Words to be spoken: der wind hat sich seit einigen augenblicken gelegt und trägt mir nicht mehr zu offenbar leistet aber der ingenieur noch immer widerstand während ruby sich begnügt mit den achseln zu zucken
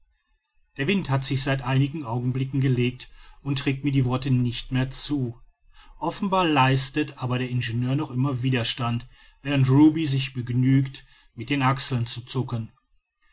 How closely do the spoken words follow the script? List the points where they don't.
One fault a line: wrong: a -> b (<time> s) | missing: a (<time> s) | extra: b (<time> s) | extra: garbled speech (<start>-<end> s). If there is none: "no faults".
extra: die worte (3.9 s)